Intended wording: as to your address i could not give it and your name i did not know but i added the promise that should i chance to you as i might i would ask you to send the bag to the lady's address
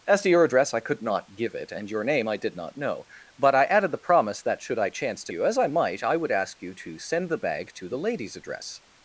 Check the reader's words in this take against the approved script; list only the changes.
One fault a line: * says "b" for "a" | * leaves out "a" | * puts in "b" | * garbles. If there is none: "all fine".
all fine